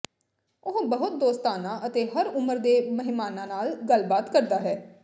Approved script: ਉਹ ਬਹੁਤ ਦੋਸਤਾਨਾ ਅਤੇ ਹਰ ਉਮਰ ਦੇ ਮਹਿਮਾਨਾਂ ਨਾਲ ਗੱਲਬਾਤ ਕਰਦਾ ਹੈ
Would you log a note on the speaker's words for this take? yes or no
no